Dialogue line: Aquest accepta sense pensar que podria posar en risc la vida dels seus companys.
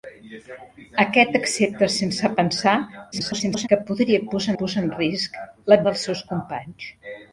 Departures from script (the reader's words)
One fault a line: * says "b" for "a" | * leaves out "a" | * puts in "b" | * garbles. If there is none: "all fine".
* garbles
* puts in "posar"
* leaves out "vida"